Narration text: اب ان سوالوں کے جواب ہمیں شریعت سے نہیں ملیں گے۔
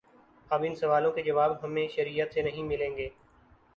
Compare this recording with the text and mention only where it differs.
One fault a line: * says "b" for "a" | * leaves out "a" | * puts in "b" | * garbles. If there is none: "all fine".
all fine